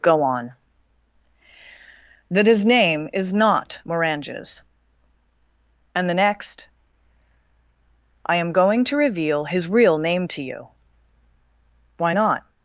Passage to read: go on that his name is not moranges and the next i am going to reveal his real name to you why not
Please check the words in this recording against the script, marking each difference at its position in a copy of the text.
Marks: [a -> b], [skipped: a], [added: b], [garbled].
go on that his name is not moranges and the next i am going to reveal his real name to you why not